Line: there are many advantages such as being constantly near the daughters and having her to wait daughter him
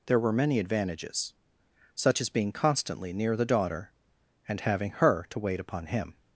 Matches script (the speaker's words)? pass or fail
fail